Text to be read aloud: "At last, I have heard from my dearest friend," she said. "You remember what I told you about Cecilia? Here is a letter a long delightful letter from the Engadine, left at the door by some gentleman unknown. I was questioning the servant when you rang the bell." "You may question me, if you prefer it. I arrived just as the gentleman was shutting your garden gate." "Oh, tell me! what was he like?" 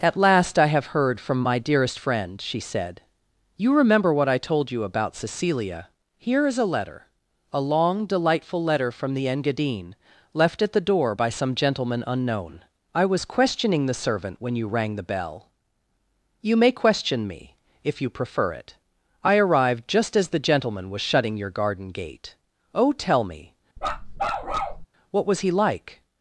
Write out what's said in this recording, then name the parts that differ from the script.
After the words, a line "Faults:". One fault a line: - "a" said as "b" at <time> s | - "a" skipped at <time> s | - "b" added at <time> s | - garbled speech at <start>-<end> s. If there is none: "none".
"At last, I have heard from my dearest friend," she said. "You remember what I told you about Cecilia? Here is a letter a long delightful letter from the Engadine, left at the door by some gentleman unknown. I was questioning the servant when you rang the bell." "You may question me, if you prefer it. I arrived just as the gentleman was shutting your garden gate." "Oh, tell me! what was he like?"
Faults:
none